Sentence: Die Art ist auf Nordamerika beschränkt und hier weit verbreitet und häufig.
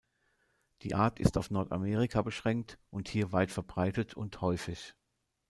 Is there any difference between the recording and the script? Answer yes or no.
no